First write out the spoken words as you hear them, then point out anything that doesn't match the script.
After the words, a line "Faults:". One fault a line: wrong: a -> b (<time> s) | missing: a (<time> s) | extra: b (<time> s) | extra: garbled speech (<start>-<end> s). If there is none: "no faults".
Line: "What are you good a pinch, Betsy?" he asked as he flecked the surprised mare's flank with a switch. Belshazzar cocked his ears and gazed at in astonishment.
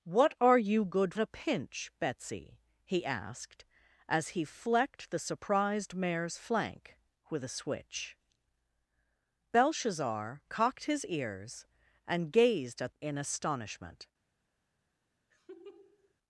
"What are you good a pinch, Betsy?" he asked as he flecked the surprised mare's flank with a switch. Belshazzar cocked his ears and gazed at in astonishment.
Faults:
no faults